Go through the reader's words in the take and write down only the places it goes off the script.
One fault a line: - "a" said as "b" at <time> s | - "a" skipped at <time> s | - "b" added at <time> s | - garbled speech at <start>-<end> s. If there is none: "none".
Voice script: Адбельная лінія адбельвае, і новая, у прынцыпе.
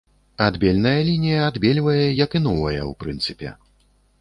- "як" added at 2.2 s